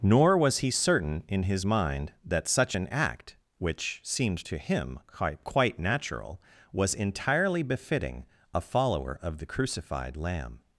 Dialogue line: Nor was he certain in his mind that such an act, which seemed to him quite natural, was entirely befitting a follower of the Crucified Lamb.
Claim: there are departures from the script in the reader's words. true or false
true